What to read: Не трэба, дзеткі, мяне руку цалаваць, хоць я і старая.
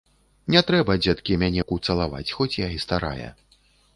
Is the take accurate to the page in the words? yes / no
yes